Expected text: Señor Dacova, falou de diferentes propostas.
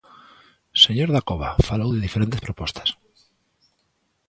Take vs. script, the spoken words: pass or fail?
pass